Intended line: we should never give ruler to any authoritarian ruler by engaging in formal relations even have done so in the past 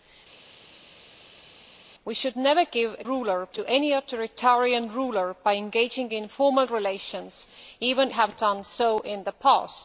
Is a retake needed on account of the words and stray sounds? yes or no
no